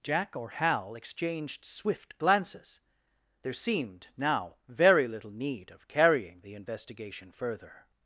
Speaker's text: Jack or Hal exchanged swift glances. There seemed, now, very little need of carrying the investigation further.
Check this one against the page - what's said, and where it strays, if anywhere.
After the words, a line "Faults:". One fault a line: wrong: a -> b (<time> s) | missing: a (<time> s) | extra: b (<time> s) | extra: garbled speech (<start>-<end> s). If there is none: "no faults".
Jack or Hal exchanged swift glances. There seemed, now, very little need of carrying the investigation further.
Faults:
no faults